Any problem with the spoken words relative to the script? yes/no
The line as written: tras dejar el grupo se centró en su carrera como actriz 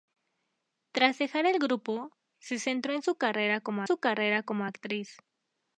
yes